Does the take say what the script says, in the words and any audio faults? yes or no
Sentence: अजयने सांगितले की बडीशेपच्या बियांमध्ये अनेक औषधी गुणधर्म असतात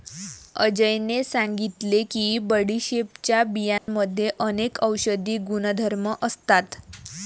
no